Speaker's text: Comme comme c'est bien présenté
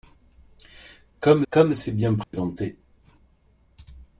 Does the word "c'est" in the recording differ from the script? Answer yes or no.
no